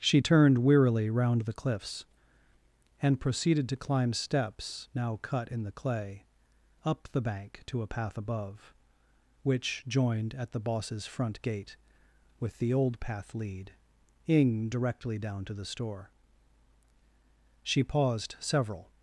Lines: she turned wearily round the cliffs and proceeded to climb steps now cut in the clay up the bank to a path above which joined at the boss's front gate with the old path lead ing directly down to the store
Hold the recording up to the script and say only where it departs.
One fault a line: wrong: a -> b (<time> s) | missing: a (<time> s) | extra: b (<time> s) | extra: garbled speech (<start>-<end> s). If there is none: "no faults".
extra: she paused several (17.6 s)